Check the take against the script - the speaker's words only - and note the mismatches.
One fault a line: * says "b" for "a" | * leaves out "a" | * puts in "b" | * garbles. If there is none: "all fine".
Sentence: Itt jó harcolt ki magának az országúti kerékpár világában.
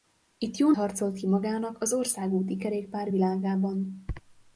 all fine